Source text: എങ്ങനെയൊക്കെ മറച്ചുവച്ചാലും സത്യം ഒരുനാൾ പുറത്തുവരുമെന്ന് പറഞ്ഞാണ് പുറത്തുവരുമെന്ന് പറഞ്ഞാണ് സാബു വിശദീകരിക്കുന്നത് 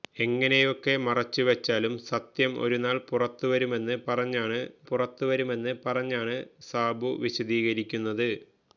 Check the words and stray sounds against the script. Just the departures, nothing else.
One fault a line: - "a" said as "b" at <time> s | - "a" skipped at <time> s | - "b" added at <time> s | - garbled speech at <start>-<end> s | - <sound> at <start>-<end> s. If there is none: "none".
none